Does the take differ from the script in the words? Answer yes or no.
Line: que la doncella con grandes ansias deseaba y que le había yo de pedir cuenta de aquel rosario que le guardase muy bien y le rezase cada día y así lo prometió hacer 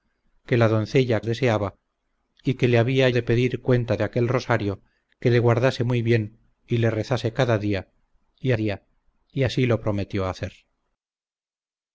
yes